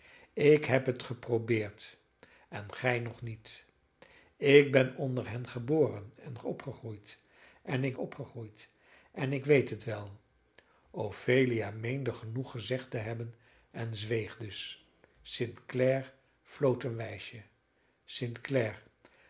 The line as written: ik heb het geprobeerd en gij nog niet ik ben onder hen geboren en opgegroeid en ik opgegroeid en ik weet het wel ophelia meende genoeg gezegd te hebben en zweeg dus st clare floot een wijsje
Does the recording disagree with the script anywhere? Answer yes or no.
no